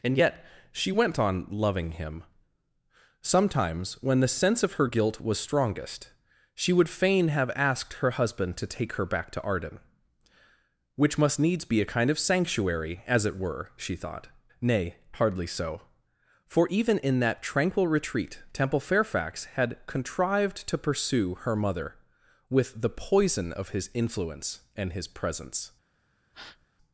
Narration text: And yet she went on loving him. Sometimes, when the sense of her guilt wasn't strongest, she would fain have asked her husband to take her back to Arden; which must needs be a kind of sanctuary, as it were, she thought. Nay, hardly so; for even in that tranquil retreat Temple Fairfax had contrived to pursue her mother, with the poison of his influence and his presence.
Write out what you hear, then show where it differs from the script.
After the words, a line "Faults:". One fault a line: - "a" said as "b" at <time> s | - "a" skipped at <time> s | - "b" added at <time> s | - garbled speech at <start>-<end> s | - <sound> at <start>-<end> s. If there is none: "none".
And yet she went on loving him. Sometimes, when the sense of her guilt was strongest, she would fain have asked her husband to take her back to Arden; which must needs be a kind of sanctuary, as it were, she thought. Nay, hardly so; for even in that tranquil retreat Temple Fairfax had contrived to pursue her mother, with the poison of his influence and his presence.
Faults:
- "wasn't" said as "was" at 5.2 s
- breath at 26.3-26.7 s